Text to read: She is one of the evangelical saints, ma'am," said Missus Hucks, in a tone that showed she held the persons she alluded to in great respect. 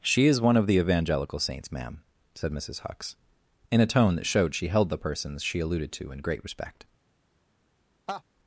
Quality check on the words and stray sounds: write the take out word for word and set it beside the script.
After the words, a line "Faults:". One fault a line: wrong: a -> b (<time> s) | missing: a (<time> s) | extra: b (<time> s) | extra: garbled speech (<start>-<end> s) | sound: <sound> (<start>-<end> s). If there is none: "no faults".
She is one of the evangelical saints, ma'am," said Missus Hucks, in a tone that showed she held the persons she alluded to in great respect.
Faults:
sound: laugh (8.1-8.2 s)